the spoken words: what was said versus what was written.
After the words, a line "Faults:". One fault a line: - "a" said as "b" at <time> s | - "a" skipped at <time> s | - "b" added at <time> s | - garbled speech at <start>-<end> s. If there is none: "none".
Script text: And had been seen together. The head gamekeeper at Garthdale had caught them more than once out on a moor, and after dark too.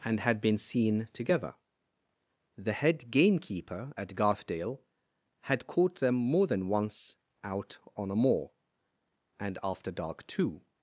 And had been seen together. The head gamekeeper at Garthdale had caught them more than once out on a moor, and after dark too.
Faults:
none